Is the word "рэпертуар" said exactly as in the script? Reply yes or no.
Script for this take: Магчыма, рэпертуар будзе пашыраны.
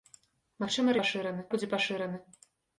no